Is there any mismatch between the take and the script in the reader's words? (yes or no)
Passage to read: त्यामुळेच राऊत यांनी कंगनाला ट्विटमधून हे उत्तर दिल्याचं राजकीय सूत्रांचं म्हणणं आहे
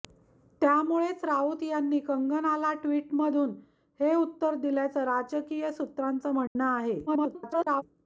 yes